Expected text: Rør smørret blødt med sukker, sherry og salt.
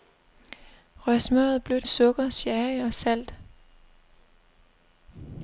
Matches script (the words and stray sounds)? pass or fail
fail